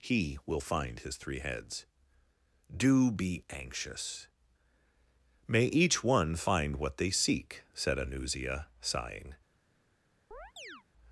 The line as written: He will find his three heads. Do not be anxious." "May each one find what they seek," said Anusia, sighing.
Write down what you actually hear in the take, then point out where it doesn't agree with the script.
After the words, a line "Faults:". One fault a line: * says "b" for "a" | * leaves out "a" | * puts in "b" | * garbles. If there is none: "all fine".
He will find his three heads. Do be anxious." "May each one find what they seek," said Anusia, sighing.
Faults:
* leaves out "not"